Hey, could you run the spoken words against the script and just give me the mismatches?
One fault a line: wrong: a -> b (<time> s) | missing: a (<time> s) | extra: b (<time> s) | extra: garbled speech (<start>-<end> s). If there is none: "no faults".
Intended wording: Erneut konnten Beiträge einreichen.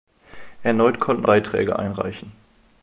no faults